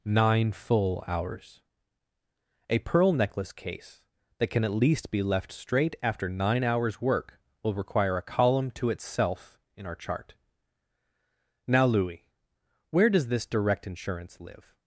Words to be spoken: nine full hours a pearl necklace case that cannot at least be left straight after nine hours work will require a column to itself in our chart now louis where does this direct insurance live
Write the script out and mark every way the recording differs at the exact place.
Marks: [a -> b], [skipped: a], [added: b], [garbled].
nine full hours a pearl necklace case that [cannot -> can] at least be left straight after nine hours work will require a column to itself in our chart now louis where does this direct insurance live